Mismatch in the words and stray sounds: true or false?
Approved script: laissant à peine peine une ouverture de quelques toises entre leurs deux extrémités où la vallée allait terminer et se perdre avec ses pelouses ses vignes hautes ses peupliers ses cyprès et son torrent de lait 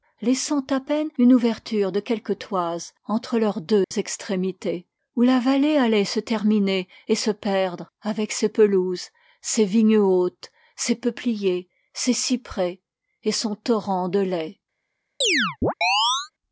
true